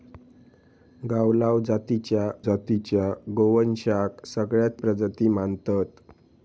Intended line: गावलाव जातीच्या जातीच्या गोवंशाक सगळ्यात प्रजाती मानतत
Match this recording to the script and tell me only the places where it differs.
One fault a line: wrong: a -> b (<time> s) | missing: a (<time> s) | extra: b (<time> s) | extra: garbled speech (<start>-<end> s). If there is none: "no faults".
no faults